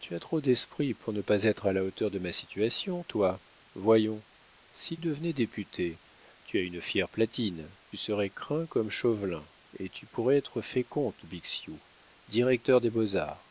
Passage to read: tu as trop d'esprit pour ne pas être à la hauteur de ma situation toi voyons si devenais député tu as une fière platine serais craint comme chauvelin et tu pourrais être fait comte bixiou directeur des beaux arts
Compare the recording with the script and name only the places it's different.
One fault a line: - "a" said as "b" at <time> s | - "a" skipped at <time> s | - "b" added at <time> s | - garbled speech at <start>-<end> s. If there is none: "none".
none